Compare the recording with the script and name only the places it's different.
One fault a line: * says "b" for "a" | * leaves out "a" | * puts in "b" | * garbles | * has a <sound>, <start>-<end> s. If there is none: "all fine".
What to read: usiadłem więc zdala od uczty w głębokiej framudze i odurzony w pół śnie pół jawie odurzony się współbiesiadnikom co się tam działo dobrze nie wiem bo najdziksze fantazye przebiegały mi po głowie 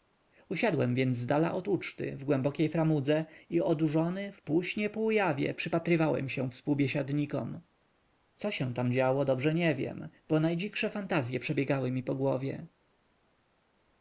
* says "przypatrywałem" for "odurzony"